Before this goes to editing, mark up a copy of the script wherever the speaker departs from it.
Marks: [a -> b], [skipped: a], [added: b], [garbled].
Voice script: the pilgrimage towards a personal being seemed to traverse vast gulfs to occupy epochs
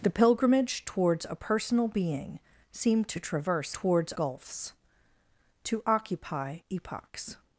the pilgrimage towards a personal being seemed to traverse [vast -> towards] gulfs to occupy epochs